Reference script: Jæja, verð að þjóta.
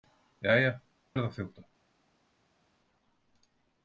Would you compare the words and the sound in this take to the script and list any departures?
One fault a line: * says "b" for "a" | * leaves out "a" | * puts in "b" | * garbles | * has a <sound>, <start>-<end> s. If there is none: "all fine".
all fine